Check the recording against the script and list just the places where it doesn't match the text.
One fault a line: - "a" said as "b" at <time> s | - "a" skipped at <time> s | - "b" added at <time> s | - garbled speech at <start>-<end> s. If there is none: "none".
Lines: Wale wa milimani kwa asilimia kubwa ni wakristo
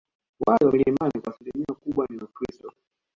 none